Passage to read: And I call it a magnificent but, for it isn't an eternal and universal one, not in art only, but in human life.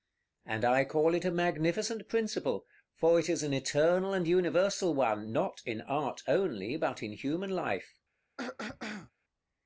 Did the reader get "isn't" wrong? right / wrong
wrong